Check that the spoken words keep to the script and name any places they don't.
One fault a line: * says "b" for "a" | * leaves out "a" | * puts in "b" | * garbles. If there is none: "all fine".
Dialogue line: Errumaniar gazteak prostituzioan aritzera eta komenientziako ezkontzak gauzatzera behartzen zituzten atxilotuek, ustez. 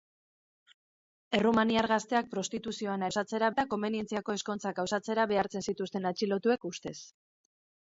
* says "gauzatzera" for "aritzera"